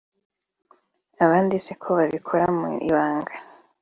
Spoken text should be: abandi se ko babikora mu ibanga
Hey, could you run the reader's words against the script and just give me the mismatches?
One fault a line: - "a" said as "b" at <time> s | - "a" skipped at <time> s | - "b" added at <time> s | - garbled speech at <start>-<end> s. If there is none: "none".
none